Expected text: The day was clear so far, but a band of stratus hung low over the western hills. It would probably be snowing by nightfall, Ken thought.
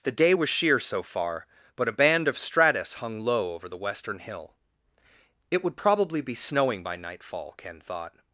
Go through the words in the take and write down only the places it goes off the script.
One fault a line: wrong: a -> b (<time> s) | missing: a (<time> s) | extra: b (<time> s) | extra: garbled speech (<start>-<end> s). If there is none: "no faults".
wrong: clear -> sheer (0.5 s)
wrong: hills -> hill (4.2 s)